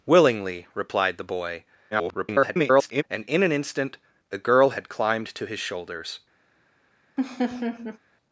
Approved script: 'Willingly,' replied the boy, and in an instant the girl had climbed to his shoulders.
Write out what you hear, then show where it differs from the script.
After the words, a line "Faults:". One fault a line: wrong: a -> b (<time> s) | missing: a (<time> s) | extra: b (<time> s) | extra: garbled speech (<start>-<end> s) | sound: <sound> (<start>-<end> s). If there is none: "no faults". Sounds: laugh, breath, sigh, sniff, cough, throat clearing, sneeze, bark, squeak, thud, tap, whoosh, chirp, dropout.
'Willingly,' replied the boy, [garbled] and in an instant the girl had climbed to his shoulders.
Faults:
extra: garbled speech (1.9-3.0 s)
sound: laugh (7.2-8.0 s)